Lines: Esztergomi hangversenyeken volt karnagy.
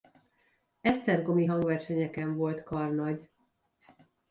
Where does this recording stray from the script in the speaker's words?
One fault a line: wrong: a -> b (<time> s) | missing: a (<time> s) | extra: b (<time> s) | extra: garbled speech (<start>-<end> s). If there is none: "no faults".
no faults